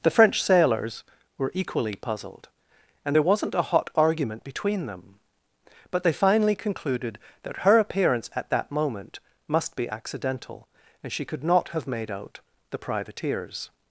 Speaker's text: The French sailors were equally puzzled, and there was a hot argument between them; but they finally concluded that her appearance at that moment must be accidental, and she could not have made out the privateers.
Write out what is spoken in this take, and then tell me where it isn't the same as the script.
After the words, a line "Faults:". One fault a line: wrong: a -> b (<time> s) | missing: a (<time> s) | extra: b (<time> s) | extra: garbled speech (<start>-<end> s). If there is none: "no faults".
The French sailors were equally puzzled, and there wasn't a hot argument between them; but they finally concluded that her appearance at that moment must be accidental, and she could not have made out the privateers.
Faults:
wrong: was -> wasn't (3.2 s)